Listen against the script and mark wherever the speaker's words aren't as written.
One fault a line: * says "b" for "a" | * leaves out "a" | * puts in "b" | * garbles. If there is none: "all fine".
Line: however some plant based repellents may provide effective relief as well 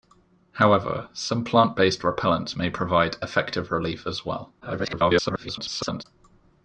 * garbles